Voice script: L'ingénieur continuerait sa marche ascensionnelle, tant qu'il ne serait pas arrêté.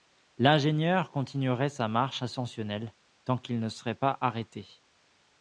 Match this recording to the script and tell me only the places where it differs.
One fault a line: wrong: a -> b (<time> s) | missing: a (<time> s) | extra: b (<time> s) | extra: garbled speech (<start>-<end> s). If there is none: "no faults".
no faults